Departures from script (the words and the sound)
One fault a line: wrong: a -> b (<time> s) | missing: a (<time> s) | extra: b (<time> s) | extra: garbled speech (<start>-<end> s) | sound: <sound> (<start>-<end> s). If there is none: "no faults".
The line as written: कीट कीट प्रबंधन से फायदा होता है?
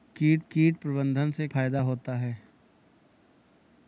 no faults